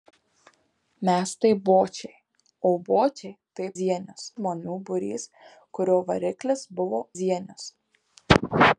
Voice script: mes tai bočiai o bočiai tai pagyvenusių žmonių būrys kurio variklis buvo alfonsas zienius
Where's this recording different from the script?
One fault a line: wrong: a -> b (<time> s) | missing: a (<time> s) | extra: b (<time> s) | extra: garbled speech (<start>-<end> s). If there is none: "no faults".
wrong: pagyvenusių -> zienius (3.8 s)
missing: alfonsas (7.0 s)